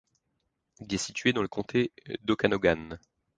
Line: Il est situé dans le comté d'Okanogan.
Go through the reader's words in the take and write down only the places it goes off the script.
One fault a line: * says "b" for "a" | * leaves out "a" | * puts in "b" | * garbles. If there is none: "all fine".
all fine